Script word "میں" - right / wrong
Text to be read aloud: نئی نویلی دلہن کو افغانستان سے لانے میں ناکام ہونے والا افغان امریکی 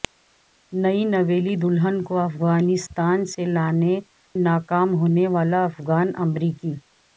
wrong